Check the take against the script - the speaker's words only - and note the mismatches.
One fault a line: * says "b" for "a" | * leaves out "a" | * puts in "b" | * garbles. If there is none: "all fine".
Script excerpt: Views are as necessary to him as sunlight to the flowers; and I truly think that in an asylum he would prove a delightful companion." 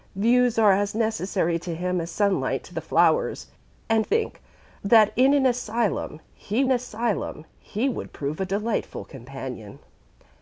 * leaves out "I truly"
* puts in "asylum he"